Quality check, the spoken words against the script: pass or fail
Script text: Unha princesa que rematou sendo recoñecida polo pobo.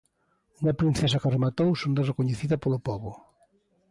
pass